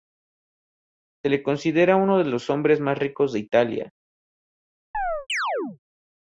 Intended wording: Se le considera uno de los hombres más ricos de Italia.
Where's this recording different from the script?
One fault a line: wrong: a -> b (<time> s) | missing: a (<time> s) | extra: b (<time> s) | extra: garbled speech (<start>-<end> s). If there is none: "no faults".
no faults